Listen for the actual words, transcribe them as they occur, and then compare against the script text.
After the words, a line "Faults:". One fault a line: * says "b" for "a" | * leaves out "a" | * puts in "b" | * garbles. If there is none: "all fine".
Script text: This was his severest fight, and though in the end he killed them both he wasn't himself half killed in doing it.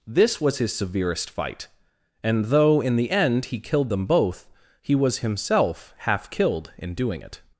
This was his severest fight, and though in the end he killed them both he was himself half killed in doing it.
Faults:
* says "was" for "wasn't"